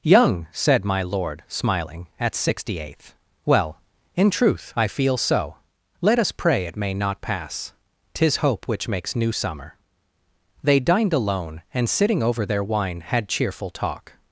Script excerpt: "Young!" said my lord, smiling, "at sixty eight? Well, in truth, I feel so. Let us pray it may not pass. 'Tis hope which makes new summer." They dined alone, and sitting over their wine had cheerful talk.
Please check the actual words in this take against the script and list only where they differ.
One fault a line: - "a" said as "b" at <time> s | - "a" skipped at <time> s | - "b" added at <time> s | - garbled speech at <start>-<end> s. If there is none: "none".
- "eight" said as "eighth" at 2.8 s